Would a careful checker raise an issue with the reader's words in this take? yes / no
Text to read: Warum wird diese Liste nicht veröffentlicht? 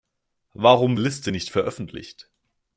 yes